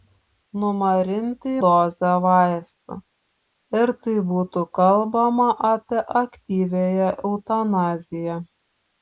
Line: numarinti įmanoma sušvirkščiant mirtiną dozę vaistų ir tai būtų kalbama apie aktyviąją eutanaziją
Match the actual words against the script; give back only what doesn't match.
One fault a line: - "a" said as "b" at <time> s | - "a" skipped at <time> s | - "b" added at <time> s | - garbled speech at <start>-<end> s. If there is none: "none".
- "įmanoma sušvirkščiant mirtiną" skipped at 1.5 s